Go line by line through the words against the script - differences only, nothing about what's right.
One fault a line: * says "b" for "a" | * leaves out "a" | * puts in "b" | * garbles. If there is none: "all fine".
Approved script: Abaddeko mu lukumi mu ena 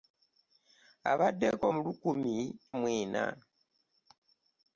all fine